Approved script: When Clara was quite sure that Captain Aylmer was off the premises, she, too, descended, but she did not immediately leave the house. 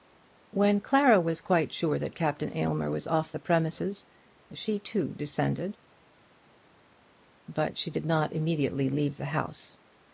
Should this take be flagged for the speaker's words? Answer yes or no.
no